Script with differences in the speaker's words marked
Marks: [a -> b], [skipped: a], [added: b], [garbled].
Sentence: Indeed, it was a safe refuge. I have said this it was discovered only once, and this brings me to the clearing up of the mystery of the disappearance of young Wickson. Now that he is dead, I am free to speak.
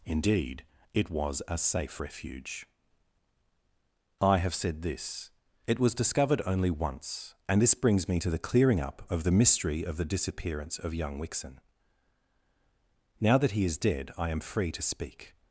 Indeed, it was a safe refuge. I have said this it was discovered only once, and this brings me to the clearing up of the mystery of the disappearance of young Wickson. Now that he is dead, I am free to speak.